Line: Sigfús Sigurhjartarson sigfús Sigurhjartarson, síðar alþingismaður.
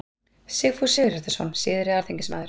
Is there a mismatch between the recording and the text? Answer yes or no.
yes